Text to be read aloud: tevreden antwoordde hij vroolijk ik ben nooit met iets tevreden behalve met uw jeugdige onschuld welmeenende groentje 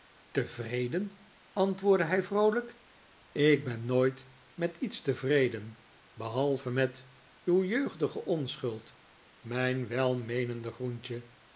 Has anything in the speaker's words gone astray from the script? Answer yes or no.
yes